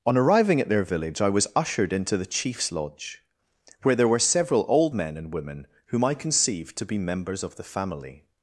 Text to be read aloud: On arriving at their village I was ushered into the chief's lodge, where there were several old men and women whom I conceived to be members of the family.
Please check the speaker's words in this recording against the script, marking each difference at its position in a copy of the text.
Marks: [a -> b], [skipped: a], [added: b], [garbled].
On arriving at their village I was ushered into the chief's lodge, where there were several old men and women whom I conceived to be members of the family.